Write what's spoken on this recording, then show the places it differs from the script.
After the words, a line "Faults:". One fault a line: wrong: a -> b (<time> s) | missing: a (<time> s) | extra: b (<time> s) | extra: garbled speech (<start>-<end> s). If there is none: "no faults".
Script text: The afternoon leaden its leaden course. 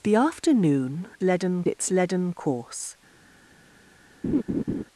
The afternoon leaden its leaden course.
Faults:
no faults